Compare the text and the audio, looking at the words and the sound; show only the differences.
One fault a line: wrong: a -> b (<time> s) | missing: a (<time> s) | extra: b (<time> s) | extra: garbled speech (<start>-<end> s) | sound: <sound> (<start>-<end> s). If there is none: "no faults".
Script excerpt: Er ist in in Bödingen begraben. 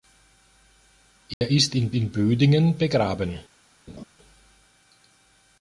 sound: dropout (1.3-1.4 s)
sound: laugh (3.9-4.0 s)